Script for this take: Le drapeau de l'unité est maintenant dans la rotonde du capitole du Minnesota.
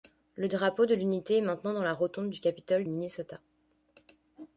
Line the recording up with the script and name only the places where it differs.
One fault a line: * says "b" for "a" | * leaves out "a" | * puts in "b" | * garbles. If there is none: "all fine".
* leaves out "du"